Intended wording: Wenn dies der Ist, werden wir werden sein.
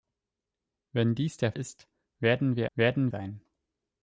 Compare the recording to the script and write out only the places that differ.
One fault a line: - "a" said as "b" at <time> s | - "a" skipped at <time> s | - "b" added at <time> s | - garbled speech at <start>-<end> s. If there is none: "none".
none